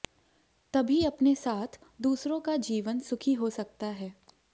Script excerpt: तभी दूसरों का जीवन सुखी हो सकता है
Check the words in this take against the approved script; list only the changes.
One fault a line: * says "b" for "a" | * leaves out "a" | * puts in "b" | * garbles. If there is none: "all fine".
* puts in "अपने साथ"